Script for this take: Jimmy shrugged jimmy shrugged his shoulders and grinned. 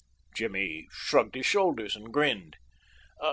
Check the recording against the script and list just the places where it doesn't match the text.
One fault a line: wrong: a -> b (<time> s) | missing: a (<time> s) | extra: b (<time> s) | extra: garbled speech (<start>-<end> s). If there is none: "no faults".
missing: jimmy shrugged (1.3 s)